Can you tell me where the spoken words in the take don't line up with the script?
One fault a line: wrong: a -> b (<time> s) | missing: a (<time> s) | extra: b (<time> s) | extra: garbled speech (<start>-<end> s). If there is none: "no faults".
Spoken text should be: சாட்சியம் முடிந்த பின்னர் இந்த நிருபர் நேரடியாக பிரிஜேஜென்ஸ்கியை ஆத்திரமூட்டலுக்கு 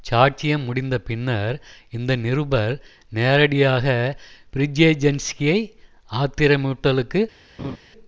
no faults